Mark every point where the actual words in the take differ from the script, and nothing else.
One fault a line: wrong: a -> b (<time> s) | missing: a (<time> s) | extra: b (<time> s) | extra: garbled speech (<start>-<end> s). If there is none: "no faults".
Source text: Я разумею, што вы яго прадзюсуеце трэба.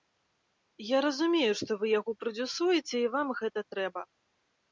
extra: і вам гэта (3.0 s)